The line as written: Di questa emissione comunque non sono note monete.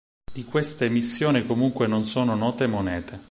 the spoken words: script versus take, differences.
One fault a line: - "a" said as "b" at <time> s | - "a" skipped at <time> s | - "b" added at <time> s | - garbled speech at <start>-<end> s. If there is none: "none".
none